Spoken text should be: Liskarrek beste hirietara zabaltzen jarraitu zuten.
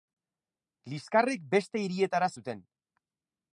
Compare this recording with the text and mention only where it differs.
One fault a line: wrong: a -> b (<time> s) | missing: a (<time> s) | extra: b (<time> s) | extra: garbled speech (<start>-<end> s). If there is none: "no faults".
missing: zabaltzen jarraitu (2.3 s)